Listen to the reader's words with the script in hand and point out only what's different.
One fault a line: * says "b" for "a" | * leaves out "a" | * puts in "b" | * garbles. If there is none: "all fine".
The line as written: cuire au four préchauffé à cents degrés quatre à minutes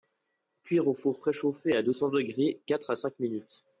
* puts in "deux"
* puts in "cinq"